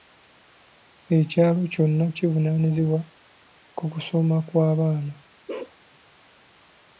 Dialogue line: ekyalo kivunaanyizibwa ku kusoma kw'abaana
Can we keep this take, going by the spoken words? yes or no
no